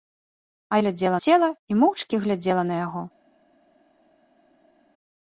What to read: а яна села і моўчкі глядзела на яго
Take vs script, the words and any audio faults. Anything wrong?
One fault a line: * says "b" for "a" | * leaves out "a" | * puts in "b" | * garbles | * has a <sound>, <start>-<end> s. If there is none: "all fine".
* says "глядзела" for "яна"